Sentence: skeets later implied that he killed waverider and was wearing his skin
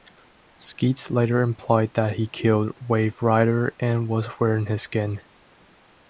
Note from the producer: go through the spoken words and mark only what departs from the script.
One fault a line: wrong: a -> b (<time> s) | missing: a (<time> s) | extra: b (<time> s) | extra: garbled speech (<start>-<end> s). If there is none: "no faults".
no faults